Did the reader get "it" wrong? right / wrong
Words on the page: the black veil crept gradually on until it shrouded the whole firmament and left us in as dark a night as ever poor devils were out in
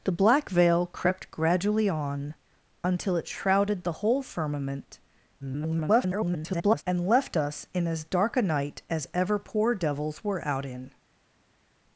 right